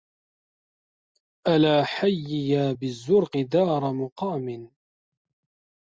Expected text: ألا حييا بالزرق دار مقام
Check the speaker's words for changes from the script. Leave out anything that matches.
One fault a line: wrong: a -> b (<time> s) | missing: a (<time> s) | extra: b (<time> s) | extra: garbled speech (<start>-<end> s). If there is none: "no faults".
no faults